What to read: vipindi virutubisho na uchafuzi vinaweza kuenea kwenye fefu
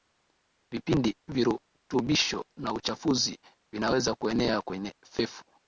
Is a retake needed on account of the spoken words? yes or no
no